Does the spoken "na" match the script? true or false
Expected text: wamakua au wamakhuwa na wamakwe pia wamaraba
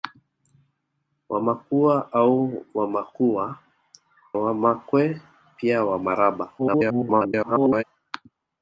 false